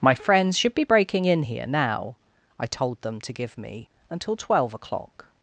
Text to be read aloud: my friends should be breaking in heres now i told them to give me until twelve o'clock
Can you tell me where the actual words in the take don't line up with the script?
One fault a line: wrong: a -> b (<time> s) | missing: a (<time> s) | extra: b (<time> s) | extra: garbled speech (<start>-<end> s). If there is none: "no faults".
wrong: heres -> here (1.4 s)